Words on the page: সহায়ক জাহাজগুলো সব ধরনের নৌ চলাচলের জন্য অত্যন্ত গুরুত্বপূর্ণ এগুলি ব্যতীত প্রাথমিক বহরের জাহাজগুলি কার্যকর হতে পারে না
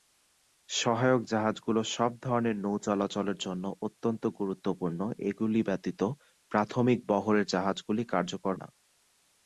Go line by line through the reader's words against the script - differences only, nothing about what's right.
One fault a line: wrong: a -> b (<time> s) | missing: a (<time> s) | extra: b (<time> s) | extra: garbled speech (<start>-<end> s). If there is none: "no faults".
missing: হতে পারে (8.5 s)